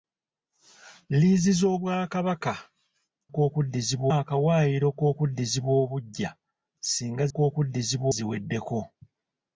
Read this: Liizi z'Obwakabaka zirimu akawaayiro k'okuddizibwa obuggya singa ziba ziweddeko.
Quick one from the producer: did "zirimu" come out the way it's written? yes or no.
no